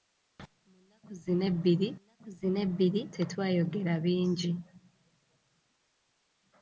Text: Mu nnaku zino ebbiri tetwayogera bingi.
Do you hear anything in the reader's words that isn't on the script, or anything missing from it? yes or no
yes